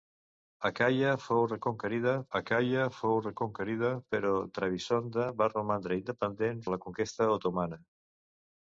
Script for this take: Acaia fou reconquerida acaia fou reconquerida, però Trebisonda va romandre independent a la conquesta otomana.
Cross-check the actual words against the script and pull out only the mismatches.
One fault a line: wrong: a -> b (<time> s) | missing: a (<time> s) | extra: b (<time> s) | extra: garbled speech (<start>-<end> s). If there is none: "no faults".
no faults